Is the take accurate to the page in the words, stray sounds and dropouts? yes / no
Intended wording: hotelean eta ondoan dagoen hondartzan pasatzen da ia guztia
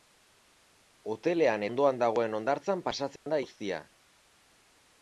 no